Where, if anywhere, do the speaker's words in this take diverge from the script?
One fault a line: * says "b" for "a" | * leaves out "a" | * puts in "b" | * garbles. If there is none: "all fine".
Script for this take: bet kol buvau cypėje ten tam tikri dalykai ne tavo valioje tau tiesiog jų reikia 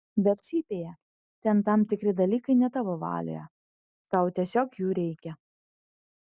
* leaves out "kol buvau"